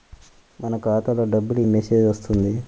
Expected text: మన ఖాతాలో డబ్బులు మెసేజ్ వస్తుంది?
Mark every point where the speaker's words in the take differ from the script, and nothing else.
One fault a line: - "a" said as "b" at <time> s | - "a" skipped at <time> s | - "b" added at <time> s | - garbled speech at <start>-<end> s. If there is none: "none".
none